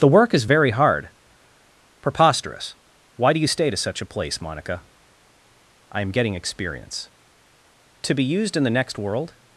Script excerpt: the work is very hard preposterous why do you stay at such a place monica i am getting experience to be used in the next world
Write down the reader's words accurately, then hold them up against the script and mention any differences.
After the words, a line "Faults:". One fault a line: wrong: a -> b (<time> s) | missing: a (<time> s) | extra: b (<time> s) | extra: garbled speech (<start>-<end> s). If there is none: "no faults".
the work is very hard preposterous why do you stay to such a place monica i am getting experience to be used in the next world
Faults:
wrong: at -> to (3.7 s)